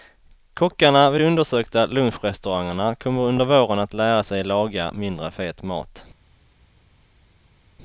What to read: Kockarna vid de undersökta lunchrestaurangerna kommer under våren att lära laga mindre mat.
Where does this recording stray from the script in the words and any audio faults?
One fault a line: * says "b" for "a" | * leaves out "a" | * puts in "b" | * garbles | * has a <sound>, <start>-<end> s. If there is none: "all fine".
* puts in "sig"
* puts in "fet"